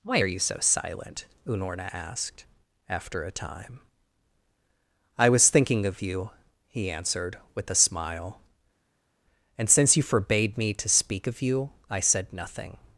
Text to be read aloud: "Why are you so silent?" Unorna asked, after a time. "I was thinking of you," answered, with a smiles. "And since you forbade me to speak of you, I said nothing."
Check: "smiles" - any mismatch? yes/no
yes